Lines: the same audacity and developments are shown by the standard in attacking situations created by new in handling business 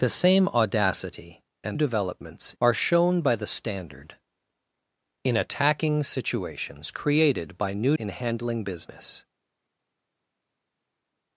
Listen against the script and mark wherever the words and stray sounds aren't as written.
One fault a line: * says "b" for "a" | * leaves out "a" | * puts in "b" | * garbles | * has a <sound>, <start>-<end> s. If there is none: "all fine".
all fine